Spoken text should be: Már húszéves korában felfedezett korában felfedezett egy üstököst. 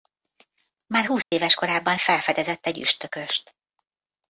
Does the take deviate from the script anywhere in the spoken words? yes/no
yes